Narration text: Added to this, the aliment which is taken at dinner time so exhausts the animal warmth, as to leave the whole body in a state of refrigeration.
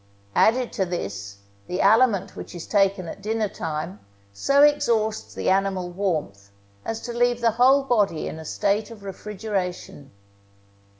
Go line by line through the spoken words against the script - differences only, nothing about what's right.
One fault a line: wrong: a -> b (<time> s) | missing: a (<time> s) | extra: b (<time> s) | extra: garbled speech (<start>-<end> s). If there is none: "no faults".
no faults